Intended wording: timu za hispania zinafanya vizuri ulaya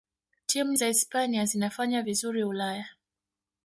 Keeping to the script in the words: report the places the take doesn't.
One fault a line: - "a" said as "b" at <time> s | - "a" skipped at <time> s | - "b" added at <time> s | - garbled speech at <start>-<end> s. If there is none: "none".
none